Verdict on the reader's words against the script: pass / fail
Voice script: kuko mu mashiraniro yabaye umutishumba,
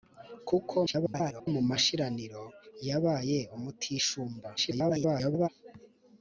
fail